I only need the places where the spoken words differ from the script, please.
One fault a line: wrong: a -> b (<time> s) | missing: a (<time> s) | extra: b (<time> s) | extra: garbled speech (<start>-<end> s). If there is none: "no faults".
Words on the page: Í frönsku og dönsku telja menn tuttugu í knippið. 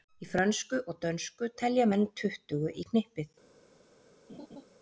no faults